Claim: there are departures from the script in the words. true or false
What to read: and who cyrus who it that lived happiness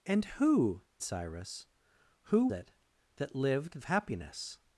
false